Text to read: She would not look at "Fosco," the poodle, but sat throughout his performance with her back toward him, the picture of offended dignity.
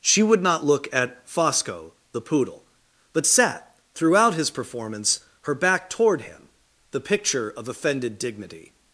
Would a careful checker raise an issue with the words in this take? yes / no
yes